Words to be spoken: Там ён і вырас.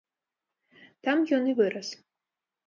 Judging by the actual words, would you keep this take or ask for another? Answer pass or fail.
pass